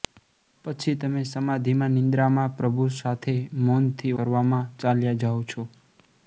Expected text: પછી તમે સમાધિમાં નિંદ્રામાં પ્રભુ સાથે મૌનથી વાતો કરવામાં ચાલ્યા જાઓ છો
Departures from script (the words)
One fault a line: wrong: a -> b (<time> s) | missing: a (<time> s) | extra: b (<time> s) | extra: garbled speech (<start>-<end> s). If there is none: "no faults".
missing: વાતો (4.2 s)